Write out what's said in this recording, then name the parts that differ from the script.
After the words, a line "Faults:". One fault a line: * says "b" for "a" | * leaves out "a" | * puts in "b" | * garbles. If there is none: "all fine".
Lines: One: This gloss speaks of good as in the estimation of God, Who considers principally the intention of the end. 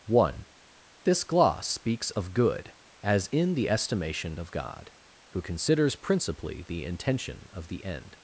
One: This gloss speaks of good as in the estimation of God, Who considers principally the intention of the end.
Faults:
all fine